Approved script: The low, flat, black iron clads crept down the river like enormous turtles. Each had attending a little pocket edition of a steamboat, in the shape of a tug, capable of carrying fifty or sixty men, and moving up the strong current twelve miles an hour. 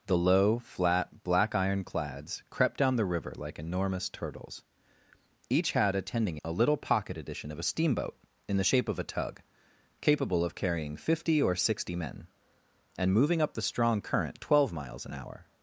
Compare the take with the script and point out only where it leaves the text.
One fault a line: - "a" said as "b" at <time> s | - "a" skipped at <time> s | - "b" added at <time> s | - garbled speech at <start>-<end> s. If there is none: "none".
none